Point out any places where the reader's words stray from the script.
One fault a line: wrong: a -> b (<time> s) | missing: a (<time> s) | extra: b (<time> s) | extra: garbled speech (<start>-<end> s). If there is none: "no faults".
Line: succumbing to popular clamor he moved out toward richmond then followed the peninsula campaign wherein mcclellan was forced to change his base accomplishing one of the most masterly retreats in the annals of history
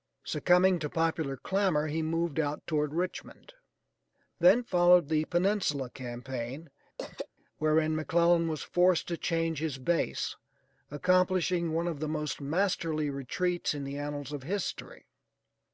no faults